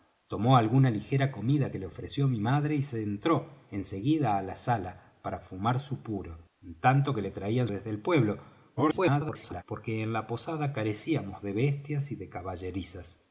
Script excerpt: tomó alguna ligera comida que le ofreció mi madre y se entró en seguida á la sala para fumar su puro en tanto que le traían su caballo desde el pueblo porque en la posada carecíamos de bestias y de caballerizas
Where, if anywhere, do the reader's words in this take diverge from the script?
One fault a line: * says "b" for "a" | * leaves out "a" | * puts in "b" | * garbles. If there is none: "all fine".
* leaves out "su caballo"
* garbles